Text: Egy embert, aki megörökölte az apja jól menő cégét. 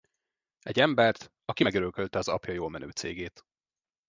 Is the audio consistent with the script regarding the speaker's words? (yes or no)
yes